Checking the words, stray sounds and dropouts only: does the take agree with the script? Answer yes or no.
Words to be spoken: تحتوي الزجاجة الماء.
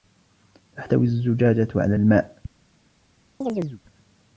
no